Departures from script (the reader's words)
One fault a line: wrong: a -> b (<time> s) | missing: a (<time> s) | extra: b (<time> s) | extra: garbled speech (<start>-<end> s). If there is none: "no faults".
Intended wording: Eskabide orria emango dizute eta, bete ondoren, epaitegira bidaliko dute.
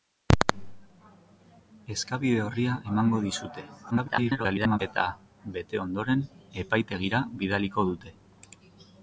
extra: garbled speech (3.9-4.8 s)